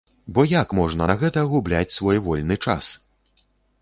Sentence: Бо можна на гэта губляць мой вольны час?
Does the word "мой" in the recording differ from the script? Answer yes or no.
yes